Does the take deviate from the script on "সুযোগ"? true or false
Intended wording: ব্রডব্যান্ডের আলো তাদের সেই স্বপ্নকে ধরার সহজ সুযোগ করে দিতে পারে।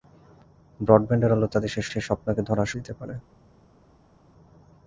true